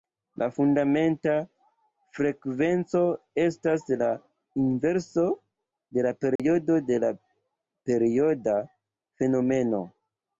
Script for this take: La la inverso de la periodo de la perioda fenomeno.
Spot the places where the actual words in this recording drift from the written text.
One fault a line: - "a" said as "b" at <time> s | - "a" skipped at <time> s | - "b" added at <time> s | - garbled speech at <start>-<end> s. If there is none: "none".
- "fundamenta frekvenco estas" added at 0.6 s